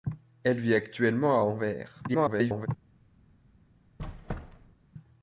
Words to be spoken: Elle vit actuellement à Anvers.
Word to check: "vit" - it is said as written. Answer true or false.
true